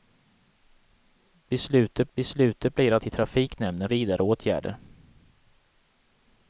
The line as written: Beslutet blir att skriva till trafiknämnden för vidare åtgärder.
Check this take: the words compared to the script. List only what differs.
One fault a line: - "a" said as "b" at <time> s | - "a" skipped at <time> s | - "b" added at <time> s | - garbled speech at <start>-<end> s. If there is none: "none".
- "beslutet" added at 2.1 s
- "skriva" skipped at 3.0 s
- "för" skipped at 3.9 s